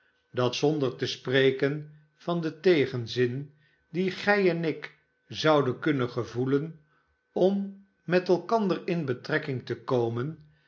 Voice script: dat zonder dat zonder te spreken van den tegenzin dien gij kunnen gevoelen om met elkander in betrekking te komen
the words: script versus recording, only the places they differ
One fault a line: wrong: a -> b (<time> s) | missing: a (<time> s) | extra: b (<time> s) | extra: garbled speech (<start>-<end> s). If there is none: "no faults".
missing: dat zonder (0.9 s)
extra: en ik zouden (4.5 s)